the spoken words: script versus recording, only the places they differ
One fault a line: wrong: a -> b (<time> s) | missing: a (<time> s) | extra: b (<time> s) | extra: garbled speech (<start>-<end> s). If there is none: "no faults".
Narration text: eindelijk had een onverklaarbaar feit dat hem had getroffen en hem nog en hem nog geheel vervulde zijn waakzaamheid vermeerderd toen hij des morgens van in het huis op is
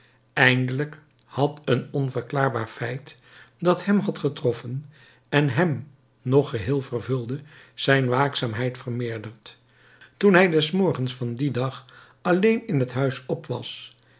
missing: en hem nog (6.5 s)
extra: dien dag alleen (11.3 s)
wrong: is -> was (13.5 s)